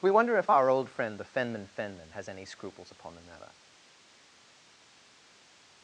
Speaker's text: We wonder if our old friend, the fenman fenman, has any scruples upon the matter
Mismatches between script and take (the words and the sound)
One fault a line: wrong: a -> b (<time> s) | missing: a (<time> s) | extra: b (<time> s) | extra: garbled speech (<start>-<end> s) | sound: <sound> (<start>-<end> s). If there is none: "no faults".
no faults